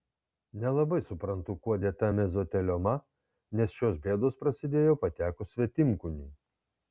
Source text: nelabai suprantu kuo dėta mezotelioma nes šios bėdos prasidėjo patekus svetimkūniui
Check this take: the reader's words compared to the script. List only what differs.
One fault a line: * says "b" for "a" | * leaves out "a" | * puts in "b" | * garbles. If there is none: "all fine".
all fine